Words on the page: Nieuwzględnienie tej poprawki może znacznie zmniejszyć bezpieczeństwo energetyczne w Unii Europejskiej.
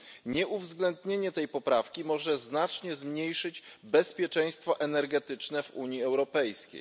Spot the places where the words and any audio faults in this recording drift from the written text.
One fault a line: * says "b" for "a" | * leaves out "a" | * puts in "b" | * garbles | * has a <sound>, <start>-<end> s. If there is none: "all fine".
all fine